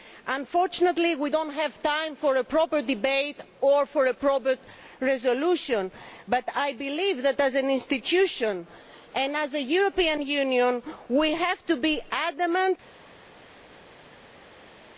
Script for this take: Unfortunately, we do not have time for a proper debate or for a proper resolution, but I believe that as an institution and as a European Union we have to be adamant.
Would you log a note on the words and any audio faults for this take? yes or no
no